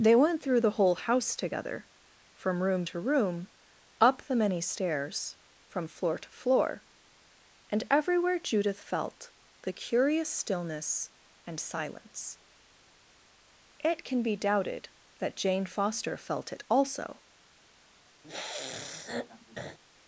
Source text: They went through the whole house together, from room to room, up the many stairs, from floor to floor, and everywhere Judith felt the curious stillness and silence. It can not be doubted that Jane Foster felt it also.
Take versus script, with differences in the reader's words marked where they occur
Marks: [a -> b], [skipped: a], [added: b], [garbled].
They went through the whole house together, from room to room, up the many stairs, from floor to floor, and everywhere Judith felt the curious stillness and silence. It can [skipped: not] be doubted that Jane Foster felt it also.